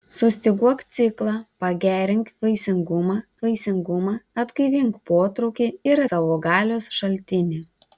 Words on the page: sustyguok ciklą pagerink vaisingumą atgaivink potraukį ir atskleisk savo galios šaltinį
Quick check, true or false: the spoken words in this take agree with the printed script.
false